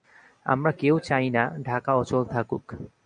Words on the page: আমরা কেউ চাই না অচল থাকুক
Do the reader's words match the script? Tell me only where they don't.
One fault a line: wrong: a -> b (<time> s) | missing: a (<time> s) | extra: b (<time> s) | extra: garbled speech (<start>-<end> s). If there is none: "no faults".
extra: ঢাকা (1.6 s)